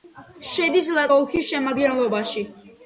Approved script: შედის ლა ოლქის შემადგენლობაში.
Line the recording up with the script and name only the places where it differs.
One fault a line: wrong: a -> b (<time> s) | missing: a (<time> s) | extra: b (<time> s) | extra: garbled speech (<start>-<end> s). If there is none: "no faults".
no faults